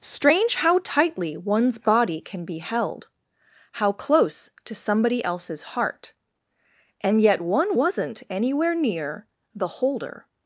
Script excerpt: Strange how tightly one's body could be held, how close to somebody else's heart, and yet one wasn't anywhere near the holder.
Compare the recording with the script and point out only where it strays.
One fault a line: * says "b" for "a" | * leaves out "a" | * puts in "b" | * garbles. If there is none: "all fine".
* says "can" for "could"